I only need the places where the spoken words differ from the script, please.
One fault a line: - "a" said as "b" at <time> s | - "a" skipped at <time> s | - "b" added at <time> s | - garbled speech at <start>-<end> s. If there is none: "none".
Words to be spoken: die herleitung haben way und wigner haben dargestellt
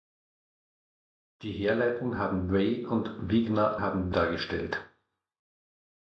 none